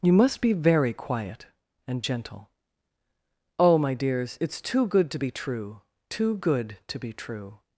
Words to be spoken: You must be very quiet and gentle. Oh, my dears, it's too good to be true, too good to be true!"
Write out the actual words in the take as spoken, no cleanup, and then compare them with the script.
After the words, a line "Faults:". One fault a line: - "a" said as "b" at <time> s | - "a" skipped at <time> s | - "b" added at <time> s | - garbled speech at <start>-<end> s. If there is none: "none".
You must be very quiet and gentle. Oh, my dears, it's too good to be true, too good to be true!"
Faults:
none